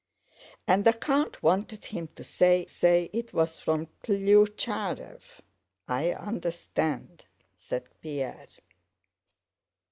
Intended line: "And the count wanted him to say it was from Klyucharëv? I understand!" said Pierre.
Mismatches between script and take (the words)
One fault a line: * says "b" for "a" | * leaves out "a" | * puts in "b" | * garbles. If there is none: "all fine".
* puts in "say"